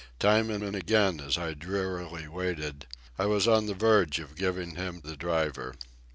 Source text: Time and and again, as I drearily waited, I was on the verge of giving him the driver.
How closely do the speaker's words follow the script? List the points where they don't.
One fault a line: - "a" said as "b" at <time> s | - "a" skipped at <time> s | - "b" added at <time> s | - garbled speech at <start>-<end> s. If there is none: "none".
none